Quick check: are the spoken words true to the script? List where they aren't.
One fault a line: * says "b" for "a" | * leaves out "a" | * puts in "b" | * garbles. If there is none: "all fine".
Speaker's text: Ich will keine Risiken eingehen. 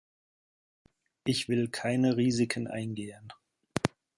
all fine